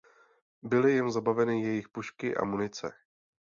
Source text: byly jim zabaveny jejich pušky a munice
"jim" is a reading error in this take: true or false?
false